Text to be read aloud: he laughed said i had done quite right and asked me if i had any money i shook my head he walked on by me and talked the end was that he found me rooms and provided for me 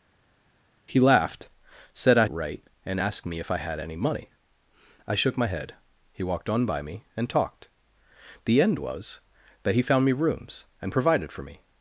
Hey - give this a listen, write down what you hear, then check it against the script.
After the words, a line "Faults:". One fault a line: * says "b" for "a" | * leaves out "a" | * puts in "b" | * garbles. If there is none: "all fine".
he laughed said i right and asked me if i had any money i shook my head he walked on by me and talked the end was that he found me rooms and provided for me
Faults:
* leaves out "had done quite"